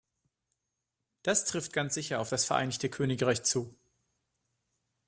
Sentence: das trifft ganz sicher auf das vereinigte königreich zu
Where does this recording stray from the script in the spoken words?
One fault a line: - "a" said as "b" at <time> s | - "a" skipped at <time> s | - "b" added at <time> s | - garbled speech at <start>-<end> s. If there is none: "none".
none